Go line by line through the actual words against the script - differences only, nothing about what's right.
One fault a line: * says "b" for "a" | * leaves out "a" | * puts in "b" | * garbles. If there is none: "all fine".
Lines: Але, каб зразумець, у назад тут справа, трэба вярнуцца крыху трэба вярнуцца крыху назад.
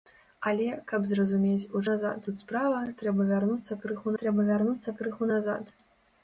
all fine